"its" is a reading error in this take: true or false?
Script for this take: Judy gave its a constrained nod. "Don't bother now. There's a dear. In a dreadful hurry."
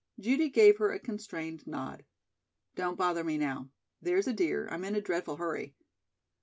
true